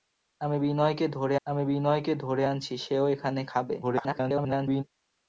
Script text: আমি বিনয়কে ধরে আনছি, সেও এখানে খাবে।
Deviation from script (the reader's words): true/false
true